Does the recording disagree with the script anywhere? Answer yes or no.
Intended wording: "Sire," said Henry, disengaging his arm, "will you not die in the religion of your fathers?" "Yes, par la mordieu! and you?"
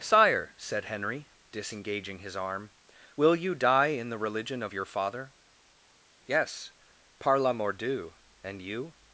yes